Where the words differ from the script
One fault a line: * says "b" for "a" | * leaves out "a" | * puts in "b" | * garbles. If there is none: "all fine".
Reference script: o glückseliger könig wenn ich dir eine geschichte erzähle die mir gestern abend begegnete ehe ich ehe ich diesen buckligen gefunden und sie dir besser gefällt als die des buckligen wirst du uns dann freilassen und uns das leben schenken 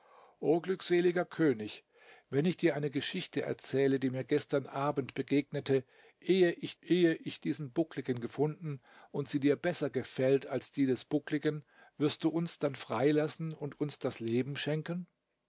all fine